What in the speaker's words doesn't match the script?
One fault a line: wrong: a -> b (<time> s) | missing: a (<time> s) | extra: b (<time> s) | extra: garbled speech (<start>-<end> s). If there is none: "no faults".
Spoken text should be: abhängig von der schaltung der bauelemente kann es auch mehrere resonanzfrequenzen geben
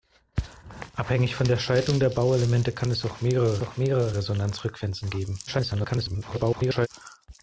extra: auch mehrere (3.6 s)
extra: garbled speech (5.5-6.9 s)